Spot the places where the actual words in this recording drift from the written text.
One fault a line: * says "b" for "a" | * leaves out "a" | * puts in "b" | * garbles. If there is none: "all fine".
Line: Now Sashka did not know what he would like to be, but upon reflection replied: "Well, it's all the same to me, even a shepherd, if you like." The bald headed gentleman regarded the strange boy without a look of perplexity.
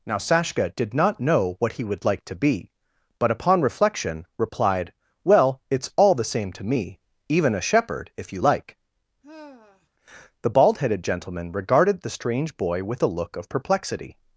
* says "with" for "without"